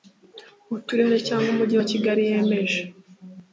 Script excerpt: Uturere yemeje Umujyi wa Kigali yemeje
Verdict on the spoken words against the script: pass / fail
fail